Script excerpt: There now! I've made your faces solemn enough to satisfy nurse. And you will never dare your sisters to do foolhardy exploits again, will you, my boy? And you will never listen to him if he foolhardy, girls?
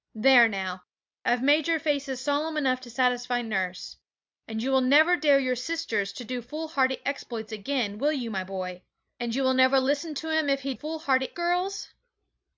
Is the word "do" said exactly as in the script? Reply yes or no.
yes